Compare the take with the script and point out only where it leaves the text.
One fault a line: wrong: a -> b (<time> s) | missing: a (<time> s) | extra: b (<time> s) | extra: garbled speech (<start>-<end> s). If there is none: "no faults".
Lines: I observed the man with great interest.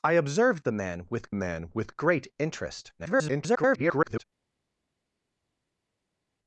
extra: man with (1.3 s)
extra: garbled speech (3.0-4.2 s)